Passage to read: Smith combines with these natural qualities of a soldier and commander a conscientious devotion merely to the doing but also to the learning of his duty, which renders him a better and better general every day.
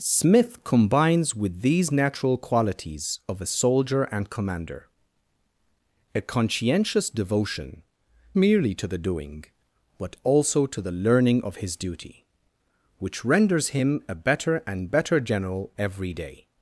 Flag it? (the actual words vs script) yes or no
no